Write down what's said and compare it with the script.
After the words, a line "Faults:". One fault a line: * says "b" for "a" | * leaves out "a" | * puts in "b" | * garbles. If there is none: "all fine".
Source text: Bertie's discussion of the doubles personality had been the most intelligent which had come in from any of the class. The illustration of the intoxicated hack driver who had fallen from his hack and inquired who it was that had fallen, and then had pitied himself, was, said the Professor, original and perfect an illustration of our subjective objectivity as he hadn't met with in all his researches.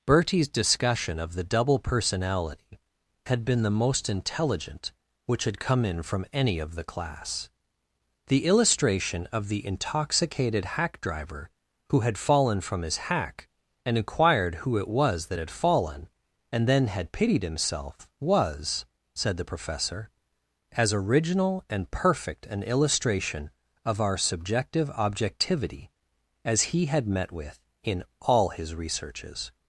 Bertie's discussion of the double personality had been the most intelligent which had come in from any of the class. The illustration of the intoxicated hack driver who had fallen from his hack and inquired who it was that had fallen, and then had pitied himself, was, said the Professor, as original and perfect an illustration of our subjective objectivity as he had met with in all his researches.
Faults:
* says "double" for "doubles"
* puts in "as"
* says "had" for "hadn't"